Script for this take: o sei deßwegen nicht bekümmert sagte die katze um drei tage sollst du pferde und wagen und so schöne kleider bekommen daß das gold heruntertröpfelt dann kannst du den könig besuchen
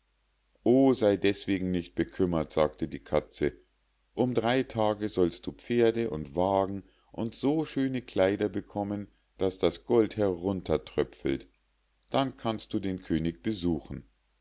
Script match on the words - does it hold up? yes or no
yes